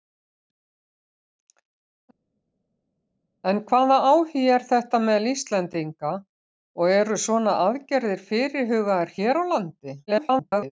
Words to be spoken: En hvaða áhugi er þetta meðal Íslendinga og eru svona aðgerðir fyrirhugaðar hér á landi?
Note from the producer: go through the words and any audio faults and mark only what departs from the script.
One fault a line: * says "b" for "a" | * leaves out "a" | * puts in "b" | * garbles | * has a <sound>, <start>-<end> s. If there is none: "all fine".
* garbles